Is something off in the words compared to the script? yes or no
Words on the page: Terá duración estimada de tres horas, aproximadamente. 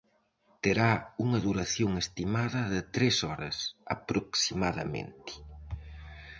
yes